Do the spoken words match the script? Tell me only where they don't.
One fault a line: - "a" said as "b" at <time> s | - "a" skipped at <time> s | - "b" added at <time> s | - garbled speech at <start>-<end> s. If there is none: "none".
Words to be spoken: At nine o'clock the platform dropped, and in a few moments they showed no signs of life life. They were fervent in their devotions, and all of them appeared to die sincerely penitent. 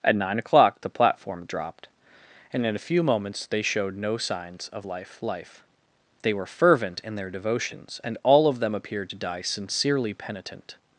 none